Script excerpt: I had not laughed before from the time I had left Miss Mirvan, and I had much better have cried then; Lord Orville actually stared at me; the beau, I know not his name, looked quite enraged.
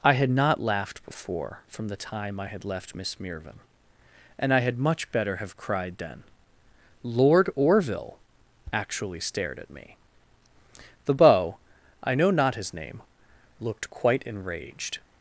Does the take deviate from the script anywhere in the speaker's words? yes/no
no